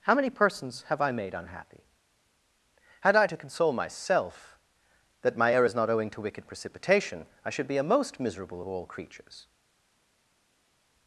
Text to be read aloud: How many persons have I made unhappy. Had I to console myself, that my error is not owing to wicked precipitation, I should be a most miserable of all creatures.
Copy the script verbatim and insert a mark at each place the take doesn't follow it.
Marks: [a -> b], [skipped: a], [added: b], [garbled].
How many persons have I made unhappy. Had I to console myself, that my error is not owing to wicked precipitation, I should be a most miserable of all creatures.